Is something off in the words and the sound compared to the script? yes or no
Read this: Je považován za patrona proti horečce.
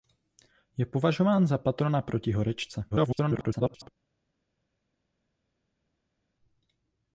yes